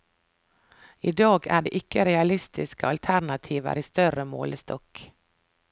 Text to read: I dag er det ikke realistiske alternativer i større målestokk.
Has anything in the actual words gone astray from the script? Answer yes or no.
no